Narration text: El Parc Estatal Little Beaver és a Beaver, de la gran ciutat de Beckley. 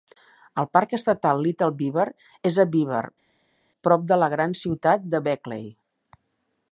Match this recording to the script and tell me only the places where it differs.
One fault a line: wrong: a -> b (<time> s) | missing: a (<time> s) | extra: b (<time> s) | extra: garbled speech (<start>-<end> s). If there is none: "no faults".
extra: prop (3.9 s)